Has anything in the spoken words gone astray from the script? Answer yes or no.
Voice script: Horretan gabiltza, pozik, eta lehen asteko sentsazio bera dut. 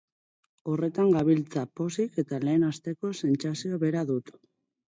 no